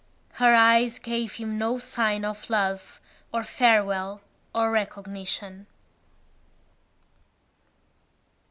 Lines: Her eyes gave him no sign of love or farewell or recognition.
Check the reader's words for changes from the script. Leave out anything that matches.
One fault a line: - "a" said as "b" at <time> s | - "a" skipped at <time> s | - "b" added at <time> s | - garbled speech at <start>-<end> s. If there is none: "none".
none